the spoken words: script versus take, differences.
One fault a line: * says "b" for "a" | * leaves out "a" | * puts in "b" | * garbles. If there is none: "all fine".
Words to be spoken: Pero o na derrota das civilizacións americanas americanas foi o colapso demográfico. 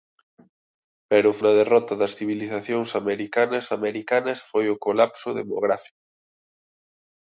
all fine